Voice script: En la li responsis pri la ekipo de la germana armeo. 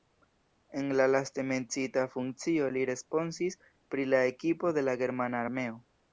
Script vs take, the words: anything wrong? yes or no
yes